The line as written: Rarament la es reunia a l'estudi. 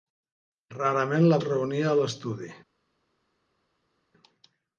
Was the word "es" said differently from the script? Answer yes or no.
no